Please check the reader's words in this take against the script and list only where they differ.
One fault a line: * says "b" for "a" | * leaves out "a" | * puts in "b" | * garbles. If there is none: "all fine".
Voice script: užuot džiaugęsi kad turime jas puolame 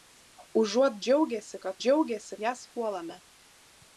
* says "džiaugęsi" for "turime"